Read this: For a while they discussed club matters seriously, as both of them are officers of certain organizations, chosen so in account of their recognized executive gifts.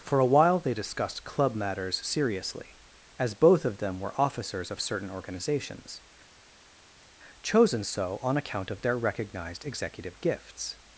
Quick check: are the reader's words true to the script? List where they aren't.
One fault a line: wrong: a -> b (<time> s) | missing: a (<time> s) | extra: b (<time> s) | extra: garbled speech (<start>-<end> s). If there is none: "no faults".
wrong: are -> were (4.0 s)
wrong: in -> on (8.2 s)